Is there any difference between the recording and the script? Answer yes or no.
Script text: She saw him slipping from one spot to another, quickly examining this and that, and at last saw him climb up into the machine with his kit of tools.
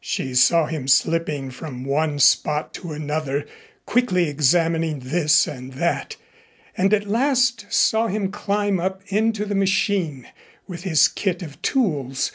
no